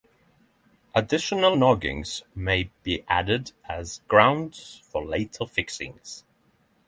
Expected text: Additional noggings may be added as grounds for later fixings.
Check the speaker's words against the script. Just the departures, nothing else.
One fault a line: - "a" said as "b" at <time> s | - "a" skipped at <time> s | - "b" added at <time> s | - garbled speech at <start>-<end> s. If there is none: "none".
none